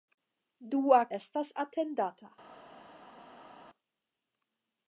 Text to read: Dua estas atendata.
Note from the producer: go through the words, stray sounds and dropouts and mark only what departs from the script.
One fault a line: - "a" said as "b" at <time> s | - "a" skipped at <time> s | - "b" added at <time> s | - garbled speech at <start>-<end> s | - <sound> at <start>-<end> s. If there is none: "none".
none